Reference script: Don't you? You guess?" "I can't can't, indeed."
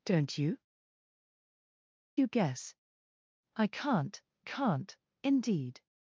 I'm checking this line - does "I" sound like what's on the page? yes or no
yes